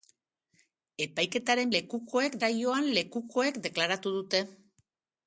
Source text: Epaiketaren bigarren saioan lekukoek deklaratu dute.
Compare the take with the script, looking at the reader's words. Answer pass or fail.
fail